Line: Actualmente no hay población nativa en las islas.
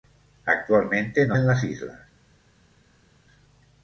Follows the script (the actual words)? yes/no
no